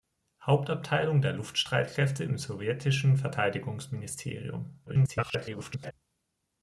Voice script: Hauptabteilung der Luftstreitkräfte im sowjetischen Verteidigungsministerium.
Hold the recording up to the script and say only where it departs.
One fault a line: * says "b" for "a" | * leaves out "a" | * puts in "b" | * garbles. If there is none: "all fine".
* garbles